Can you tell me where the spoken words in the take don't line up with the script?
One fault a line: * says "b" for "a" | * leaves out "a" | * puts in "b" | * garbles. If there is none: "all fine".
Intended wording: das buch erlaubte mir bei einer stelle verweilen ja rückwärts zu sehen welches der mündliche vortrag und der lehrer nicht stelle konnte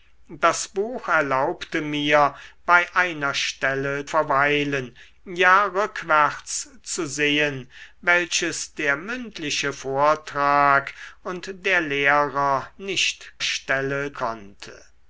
all fine